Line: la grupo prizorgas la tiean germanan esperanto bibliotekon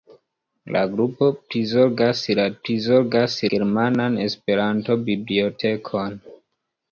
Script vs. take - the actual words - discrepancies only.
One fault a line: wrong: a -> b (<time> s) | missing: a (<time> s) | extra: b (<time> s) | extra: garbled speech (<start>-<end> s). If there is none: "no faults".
wrong: tiean -> prizorgas (2.7 s)